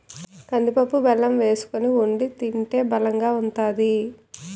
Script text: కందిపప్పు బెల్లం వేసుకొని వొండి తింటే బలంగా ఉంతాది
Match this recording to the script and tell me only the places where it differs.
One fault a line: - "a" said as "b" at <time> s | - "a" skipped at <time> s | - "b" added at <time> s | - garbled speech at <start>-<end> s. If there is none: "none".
none